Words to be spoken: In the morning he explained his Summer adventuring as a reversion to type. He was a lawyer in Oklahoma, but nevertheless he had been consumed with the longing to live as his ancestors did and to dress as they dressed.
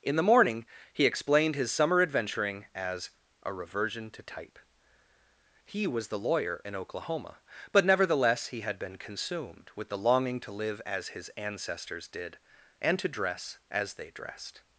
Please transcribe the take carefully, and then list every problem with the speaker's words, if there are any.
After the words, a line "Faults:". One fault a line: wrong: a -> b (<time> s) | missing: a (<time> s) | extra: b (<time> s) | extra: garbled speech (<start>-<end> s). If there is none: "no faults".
In the morning he explained his Summer adventuring as a reversion to type. He was the lawyer in Oklahoma, but nevertheless he had been consumed with the longing to live as his ancestors did and to dress as they dressed.
Faults:
wrong: a -> the (6.1 s)